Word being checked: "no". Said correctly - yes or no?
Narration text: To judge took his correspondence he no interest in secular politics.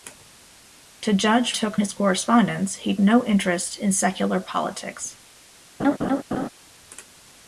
yes